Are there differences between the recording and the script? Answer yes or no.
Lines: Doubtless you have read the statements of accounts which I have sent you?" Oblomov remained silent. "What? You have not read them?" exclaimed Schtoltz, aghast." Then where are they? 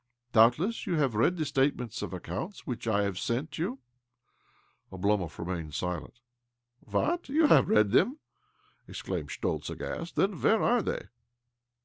yes